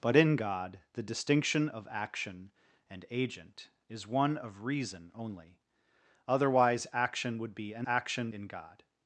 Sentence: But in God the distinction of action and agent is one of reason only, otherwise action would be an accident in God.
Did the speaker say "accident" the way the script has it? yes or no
no